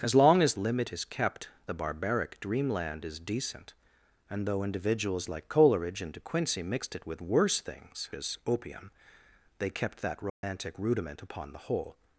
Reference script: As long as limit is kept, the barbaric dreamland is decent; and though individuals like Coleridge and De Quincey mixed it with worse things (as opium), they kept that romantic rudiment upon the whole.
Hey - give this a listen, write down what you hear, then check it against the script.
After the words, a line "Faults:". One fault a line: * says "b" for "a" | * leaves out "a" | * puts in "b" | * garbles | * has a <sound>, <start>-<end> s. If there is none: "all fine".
As long as limit is kept, the barbaric dreamland is decent; and though individuals like Coleridge and De Quincey mixed it with worse things (as opium), they kept that romantic rudiment upon the whole.
Faults:
* has a dropout, 10.3-10.4 s